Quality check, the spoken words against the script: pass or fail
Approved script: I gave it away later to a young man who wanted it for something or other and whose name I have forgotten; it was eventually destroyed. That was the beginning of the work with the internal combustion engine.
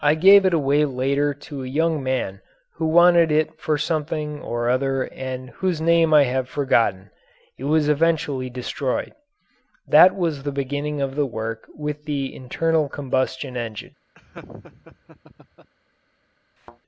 pass